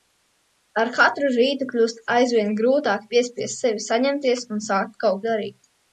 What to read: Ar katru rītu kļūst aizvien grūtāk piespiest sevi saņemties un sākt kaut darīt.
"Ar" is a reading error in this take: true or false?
false